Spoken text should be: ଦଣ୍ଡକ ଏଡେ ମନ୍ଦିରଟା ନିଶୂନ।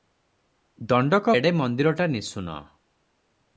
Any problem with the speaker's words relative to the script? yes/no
no